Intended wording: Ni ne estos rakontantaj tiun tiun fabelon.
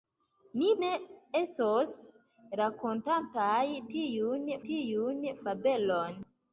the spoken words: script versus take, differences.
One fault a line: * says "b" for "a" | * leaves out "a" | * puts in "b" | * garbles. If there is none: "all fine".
all fine